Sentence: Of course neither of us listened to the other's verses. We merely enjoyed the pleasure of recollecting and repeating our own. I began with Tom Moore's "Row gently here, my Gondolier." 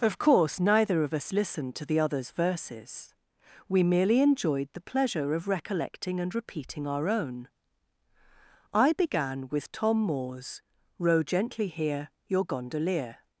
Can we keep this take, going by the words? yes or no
no